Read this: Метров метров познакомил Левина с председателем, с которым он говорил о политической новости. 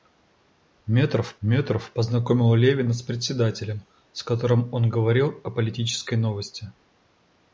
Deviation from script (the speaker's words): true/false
false